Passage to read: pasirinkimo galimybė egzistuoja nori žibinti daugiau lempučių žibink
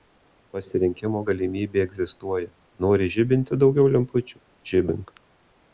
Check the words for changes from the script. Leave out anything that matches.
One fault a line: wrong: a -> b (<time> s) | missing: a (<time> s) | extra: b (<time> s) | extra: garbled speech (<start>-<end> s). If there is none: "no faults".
no faults